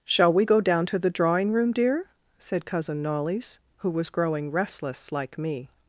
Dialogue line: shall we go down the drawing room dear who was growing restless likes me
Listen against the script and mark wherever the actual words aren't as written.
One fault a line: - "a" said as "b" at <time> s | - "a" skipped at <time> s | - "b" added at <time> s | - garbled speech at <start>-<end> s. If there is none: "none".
- "to" added at 0.9 s
- "said cousin knollys" added at 2.4 s
- "likes" said as "like" at 5.1 s